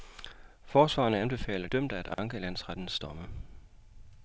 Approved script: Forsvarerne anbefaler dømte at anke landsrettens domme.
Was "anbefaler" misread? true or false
false